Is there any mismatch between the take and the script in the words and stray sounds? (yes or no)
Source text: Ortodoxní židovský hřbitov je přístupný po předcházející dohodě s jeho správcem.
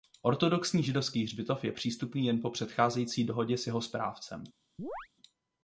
yes